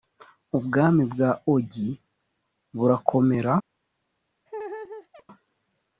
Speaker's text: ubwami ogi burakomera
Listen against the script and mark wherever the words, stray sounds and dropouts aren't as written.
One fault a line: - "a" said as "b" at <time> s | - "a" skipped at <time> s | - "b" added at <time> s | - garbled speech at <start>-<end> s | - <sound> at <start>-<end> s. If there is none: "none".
- "bwa" added at 1.1 s
- laugh at 4.5-5.2 s